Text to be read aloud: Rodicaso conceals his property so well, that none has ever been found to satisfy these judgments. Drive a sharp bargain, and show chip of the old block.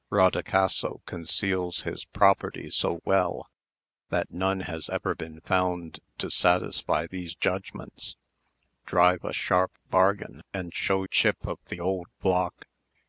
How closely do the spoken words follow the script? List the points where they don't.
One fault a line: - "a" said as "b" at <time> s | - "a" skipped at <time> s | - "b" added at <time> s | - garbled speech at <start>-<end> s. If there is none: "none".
none